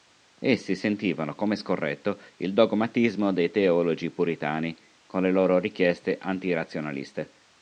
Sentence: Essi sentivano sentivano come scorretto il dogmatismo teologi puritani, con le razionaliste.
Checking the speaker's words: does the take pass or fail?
fail